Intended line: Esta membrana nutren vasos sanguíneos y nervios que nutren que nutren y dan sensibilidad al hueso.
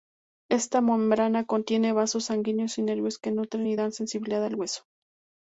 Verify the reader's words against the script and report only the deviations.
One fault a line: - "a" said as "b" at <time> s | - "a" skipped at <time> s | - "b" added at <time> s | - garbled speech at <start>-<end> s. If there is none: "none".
- "nutren" said as "contiene" at 1.4 s
- "que nutren" skipped at 3.7 s